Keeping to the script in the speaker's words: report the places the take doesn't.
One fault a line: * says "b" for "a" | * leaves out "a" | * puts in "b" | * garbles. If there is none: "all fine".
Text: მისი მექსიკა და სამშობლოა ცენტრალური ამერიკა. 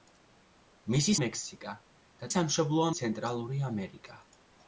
all fine